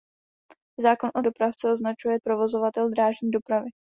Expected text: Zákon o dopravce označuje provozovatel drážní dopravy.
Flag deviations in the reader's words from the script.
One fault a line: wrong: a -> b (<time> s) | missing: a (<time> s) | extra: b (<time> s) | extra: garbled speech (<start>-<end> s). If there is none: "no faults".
no faults